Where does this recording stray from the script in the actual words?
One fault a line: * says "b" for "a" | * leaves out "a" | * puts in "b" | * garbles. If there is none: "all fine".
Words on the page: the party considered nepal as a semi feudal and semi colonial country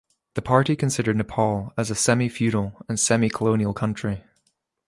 all fine